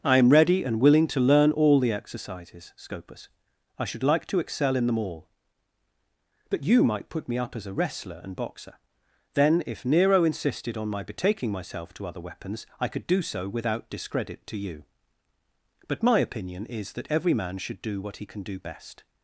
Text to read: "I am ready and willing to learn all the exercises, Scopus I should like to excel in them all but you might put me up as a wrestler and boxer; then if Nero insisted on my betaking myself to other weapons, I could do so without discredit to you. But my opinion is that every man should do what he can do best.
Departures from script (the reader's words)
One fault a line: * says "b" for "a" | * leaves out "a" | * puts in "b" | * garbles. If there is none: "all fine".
all fine